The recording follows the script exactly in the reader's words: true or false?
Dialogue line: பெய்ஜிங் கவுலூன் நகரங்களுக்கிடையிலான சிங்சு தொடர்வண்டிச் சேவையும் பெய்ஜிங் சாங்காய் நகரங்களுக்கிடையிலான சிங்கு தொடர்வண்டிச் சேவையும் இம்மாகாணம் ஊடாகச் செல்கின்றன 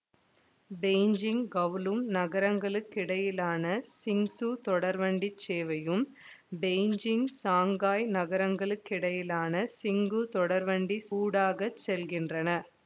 false